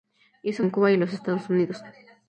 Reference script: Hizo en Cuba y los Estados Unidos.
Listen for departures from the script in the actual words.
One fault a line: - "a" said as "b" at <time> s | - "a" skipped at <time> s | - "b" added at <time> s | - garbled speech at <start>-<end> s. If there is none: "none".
none